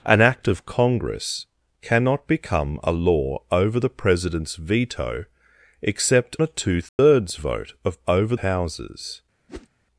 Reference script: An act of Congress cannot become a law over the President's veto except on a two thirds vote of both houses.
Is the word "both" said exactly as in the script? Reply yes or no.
no